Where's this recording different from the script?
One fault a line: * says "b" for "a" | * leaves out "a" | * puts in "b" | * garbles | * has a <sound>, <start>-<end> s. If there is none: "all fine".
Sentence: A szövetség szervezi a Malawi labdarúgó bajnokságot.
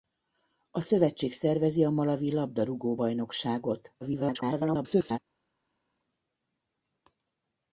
* garbles